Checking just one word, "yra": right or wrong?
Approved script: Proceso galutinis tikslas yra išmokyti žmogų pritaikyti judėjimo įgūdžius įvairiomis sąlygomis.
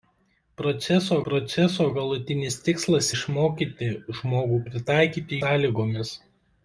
wrong